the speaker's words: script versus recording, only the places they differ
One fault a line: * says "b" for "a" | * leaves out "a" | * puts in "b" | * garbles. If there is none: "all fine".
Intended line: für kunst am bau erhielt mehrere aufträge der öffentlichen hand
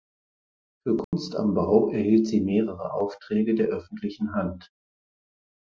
* puts in "sie"